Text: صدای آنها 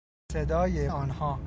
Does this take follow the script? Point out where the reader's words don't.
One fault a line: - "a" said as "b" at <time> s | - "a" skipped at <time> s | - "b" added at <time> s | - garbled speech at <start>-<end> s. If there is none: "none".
none